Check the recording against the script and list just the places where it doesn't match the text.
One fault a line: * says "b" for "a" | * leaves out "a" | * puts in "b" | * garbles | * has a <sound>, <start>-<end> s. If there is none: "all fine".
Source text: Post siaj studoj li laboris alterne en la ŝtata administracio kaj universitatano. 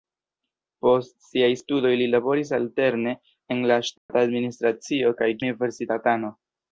* has a dropout, 4.0-4.1 s